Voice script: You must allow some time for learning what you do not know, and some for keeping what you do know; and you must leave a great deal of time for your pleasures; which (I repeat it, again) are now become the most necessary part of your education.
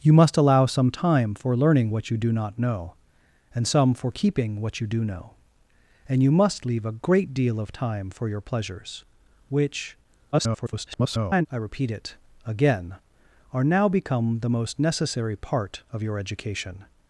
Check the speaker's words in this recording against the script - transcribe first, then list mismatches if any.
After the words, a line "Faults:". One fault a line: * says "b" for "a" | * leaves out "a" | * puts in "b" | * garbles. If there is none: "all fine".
You must allow some time for learning what you do not know, and some for keeping what you do know; and you must leave a great deal of time for your pleasures; which [garbled] (I repeat it, again) are now become the most necessary part of your education.
Faults:
* garbles